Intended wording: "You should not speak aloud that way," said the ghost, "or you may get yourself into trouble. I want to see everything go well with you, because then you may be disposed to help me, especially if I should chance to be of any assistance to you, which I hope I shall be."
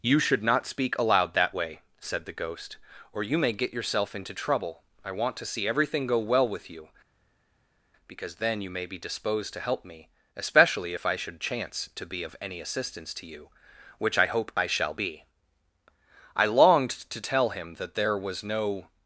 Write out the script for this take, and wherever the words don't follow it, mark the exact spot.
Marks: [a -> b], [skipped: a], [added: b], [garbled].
"You should not speak aloud that way," said the ghost, "or you may get yourself into trouble. I want to see everything go well with you, because then you may be disposed to help me, especially if I should chance to be of any assistance to you, which I hope I shall be." [added: I longed to tell him that there was no]